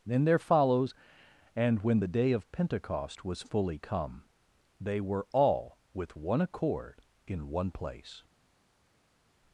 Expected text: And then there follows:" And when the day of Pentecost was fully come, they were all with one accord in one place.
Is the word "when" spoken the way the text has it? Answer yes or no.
yes